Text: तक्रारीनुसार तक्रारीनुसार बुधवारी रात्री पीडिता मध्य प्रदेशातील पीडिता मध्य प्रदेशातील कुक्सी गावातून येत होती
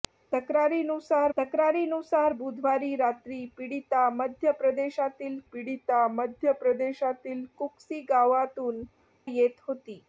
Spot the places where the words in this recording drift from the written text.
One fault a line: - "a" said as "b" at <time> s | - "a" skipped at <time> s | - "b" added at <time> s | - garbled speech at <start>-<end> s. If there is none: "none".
none